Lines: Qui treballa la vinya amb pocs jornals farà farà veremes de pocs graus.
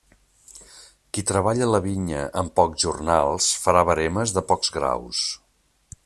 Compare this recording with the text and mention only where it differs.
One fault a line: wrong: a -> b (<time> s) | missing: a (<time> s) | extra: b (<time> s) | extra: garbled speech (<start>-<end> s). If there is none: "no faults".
missing: farà (3.8 s)